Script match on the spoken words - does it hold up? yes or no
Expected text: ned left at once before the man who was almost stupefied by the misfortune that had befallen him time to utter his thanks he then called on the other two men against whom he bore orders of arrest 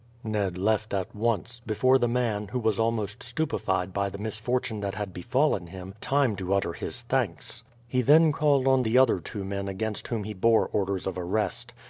yes